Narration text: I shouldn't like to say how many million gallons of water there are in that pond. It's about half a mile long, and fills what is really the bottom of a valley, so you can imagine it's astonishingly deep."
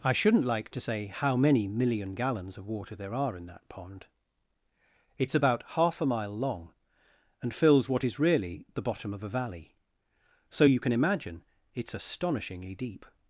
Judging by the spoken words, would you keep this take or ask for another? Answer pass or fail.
pass